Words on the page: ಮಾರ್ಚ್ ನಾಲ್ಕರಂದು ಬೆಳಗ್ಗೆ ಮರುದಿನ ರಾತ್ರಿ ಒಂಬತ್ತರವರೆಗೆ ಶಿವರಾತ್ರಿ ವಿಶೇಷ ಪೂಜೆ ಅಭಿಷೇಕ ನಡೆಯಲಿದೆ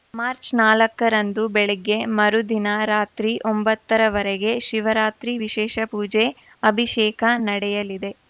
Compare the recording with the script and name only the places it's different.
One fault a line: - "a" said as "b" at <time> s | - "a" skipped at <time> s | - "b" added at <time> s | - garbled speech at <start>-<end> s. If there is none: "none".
none